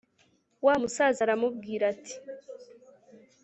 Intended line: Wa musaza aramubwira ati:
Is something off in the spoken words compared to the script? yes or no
no